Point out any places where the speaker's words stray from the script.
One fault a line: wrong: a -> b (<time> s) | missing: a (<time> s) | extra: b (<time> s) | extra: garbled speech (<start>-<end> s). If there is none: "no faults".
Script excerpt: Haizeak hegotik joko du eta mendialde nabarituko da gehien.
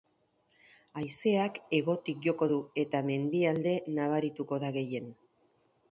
no faults